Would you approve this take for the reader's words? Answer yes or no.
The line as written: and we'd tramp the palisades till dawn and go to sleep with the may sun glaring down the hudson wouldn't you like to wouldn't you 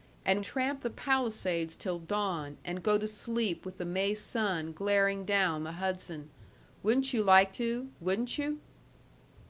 no